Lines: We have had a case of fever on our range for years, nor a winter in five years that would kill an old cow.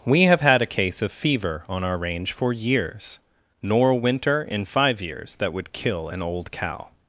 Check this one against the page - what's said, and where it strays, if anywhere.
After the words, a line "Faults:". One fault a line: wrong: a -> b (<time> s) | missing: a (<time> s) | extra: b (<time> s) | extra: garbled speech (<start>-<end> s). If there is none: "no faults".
We have had a case of fever on our range for years, nor a winter in five years that would kill an old cow.
Faults:
no faults